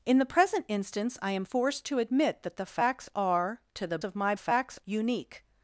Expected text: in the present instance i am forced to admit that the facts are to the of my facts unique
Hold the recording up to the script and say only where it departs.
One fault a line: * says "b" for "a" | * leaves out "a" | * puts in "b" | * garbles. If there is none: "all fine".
all fine